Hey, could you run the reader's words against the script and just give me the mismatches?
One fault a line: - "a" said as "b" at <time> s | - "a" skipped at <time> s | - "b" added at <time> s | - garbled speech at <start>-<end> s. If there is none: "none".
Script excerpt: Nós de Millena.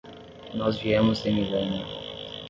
- "viemos" added at 0.8 s